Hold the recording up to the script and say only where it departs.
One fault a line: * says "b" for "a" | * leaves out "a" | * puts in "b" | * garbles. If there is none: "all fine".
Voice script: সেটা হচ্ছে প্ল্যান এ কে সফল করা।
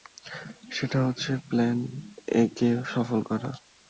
all fine